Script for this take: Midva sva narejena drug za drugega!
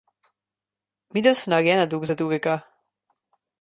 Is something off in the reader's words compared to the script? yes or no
no